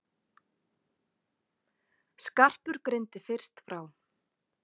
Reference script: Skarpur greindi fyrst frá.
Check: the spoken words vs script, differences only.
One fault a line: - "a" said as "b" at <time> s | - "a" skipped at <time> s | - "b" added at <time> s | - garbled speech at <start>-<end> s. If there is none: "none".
none